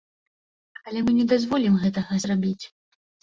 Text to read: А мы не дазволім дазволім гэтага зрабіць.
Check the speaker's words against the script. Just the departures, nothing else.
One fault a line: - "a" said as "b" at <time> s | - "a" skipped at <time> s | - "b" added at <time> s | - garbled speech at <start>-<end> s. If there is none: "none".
- "А" said as "Але" at 0.9 s
- "дазволім" skipped at 1.8 s